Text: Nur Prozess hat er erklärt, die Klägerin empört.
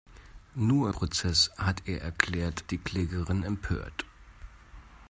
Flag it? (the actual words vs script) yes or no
no